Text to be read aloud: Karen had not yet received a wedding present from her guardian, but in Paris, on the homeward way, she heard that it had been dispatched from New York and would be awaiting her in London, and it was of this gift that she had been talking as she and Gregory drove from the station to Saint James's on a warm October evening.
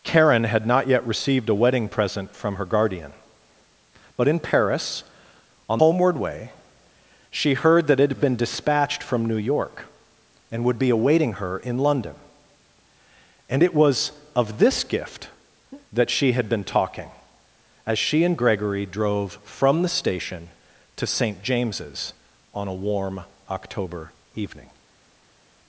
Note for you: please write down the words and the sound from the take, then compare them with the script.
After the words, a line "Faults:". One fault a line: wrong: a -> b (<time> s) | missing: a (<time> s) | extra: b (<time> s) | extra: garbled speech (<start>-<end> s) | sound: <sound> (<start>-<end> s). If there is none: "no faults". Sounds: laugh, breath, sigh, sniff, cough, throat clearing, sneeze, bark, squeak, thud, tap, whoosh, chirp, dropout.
Karen had not yet received a wedding present from her guardian, but in Paris, on homeward way, she heard that it had been dispatched from New York and would be awaiting her in London, and it was of this gift that she had been talking as she and Gregory drove from the station to Saint James's on a warm October evening.
Faults:
missing: the (5.8 s)